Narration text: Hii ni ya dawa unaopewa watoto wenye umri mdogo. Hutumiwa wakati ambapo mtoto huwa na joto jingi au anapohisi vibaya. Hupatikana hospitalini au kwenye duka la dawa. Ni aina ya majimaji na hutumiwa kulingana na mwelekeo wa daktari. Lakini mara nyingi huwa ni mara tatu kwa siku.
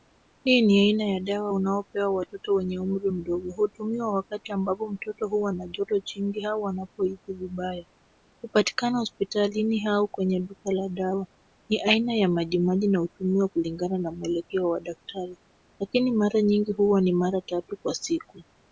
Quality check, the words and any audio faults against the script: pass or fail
fail